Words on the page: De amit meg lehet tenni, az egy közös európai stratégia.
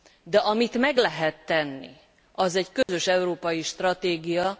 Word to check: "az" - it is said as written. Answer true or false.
true